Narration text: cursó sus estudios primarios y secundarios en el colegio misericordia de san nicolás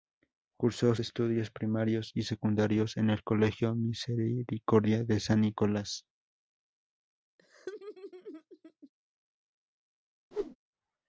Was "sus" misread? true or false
true